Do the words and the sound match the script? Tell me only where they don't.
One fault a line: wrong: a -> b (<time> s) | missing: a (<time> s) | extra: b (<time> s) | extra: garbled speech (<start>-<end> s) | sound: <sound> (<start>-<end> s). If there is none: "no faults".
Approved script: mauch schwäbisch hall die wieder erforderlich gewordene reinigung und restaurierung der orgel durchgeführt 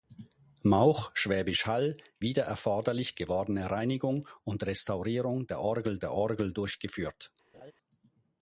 missing: die (1.9 s)
extra: der orgel (6.0 s)
sound: laugh (7.5-7.7 s)